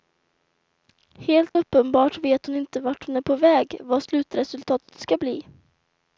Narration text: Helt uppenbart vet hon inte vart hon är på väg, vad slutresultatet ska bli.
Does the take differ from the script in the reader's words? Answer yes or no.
no